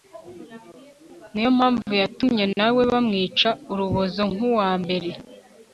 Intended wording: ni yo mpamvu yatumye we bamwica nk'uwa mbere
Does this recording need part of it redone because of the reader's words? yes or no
yes